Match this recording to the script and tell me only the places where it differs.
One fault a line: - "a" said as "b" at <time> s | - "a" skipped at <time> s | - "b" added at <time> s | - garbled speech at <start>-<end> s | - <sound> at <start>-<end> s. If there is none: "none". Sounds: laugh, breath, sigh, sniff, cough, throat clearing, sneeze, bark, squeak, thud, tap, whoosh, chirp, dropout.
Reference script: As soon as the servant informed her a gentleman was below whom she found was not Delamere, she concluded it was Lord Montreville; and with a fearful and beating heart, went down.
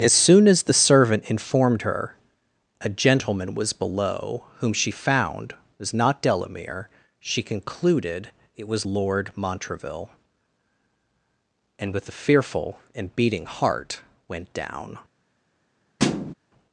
- thud at 16.0-16.3 s